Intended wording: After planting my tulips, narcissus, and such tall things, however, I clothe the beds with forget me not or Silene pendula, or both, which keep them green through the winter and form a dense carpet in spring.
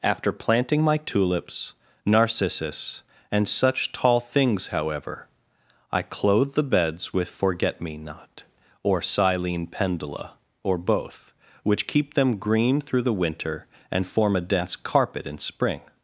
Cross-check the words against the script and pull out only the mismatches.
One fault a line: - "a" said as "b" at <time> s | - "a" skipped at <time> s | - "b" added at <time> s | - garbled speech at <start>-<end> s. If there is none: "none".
none